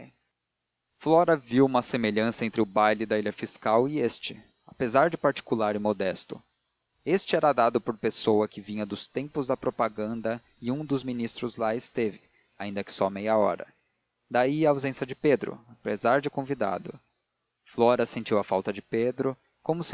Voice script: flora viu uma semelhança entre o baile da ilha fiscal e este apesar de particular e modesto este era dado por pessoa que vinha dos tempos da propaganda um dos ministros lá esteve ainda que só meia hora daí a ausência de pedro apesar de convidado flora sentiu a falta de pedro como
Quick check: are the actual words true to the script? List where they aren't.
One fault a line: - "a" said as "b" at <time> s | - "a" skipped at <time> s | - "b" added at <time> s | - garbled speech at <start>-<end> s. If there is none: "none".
- "e" added at 10.6 s